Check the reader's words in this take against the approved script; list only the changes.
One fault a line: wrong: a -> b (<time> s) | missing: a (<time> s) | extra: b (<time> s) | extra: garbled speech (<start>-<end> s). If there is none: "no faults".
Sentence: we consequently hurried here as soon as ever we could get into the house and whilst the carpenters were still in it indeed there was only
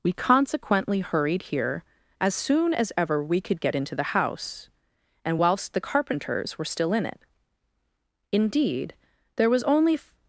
no faults